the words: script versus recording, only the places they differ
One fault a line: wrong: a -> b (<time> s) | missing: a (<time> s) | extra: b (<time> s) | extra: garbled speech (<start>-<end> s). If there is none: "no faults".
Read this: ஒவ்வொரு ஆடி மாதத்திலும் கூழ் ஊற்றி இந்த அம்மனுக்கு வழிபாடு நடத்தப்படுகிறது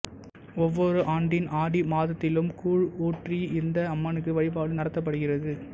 extra: ஆண்டின் (1.1 s)